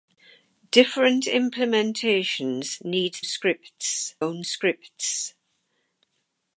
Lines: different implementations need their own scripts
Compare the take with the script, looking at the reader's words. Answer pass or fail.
fail